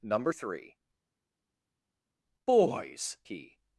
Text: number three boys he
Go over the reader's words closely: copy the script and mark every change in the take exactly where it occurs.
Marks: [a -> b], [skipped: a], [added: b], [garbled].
number three boys he